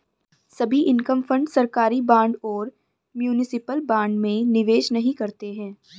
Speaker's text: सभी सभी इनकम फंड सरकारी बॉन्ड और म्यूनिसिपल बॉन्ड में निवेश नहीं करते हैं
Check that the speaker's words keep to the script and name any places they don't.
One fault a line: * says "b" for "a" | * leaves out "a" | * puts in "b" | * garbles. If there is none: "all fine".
* leaves out "सभी"